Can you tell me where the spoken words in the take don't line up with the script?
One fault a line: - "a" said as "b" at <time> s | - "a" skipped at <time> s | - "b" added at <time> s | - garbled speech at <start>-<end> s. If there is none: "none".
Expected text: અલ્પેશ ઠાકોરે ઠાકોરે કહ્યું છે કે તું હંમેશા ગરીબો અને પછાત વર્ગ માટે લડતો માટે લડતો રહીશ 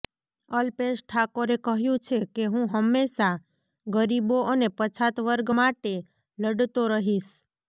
- "ઠાકોરે" skipped at 1.6 s
- "તું" said as "હું" at 2.5 s
- "માટે લડતો" skipped at 6.8 s